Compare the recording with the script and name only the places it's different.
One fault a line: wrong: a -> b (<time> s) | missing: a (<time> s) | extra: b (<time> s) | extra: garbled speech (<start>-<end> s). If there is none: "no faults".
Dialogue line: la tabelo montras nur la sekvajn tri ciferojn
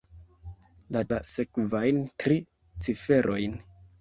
missing: tabelo montras nur (1.0 s)